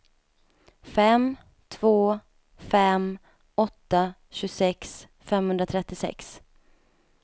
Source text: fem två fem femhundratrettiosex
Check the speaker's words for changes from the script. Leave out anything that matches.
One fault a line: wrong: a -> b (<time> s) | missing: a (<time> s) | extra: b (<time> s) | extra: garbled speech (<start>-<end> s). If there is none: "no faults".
extra: åtta tjugosex (3.5 s)